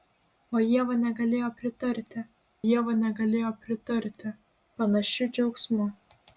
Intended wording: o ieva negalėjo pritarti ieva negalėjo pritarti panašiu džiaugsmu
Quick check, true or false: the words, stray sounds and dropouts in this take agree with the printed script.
true